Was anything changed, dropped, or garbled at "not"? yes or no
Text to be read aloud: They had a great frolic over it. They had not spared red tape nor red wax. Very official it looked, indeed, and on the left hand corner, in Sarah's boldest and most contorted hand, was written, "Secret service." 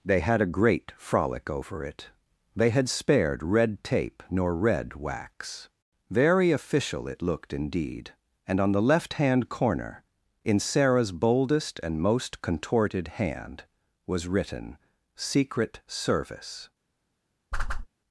yes